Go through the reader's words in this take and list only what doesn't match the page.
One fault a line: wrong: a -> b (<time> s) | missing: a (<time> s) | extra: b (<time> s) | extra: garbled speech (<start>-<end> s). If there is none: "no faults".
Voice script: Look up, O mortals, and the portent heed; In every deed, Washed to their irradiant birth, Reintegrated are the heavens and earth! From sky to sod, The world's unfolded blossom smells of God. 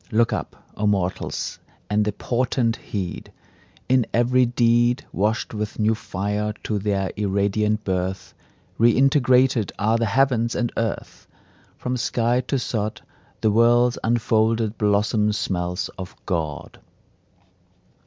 extra: with new fire (5.5 s)